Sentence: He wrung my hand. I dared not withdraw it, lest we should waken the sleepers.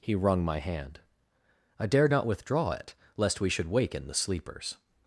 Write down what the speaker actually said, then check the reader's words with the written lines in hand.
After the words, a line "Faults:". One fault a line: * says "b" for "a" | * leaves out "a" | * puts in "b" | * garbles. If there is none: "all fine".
He wrung my hand. I dared not withdraw it, lest we should waken the sleepers.
Faults:
all fine